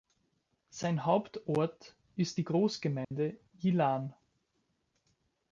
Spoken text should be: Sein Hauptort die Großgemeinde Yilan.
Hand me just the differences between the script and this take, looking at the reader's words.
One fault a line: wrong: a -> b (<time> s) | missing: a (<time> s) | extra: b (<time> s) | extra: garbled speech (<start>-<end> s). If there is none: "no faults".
extra: ist (2.1 s)